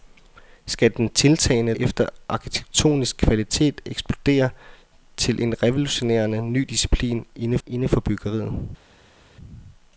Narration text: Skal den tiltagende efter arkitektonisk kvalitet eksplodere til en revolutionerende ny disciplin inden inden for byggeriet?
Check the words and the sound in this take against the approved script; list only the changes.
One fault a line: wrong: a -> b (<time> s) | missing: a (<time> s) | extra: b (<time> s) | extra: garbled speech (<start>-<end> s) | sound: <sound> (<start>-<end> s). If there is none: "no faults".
no faults